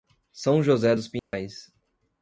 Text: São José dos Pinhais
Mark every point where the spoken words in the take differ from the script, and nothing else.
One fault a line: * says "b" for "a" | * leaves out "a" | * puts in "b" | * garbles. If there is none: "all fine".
all fine